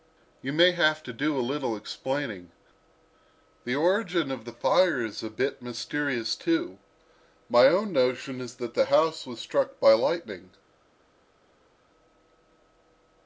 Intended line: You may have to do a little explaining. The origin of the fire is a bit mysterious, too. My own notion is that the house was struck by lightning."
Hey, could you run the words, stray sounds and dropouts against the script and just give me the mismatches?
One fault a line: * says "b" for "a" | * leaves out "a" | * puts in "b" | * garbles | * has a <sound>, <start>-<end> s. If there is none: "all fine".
all fine